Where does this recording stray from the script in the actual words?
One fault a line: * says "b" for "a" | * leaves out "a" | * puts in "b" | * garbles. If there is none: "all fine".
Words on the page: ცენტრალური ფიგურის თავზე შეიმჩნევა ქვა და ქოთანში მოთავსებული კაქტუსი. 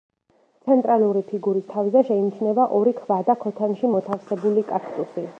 * puts in "ორი"